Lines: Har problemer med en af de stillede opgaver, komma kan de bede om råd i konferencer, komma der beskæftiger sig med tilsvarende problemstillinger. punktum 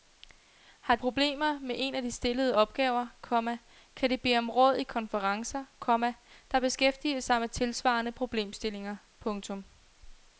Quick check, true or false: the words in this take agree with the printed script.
true